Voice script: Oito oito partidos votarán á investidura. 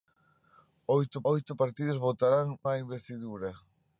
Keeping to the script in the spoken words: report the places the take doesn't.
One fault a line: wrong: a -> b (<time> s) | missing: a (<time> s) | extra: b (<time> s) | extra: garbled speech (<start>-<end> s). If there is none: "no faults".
no faults